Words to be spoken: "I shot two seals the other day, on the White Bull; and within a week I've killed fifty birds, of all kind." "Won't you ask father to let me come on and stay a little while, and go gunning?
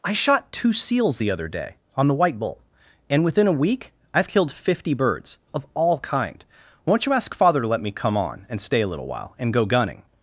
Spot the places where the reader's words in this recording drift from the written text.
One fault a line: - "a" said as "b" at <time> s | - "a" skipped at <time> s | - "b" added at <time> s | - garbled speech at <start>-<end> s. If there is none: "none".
none